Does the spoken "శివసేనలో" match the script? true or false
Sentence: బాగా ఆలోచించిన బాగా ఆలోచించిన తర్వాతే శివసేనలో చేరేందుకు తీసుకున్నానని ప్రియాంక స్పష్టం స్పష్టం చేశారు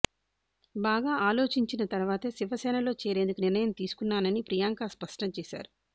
true